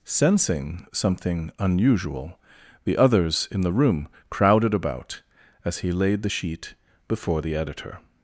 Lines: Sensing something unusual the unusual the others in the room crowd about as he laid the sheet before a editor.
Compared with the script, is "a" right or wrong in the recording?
wrong